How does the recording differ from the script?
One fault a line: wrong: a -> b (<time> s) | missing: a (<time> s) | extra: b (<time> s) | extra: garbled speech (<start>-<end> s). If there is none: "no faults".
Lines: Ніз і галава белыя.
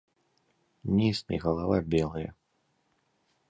no faults